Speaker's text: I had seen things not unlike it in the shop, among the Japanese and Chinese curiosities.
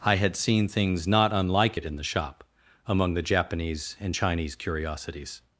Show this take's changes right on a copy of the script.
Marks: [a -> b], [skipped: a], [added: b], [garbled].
I had seen things not unlike it in the shop, among the Japanese and Chinese curiosities.